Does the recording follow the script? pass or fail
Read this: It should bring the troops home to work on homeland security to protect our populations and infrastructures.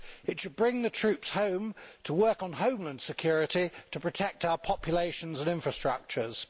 pass